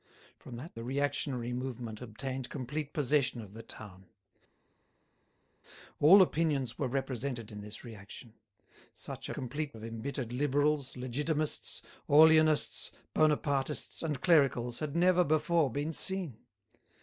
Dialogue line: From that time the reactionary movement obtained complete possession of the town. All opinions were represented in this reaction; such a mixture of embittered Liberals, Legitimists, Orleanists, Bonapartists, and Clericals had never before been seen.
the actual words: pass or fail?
fail